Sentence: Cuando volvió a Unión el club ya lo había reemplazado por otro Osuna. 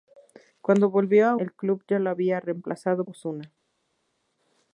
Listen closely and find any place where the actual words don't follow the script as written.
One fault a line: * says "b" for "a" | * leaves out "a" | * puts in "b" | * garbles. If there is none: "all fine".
* leaves out "Unión"
* leaves out "por otro"